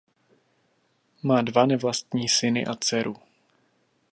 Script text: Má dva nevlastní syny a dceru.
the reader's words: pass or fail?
pass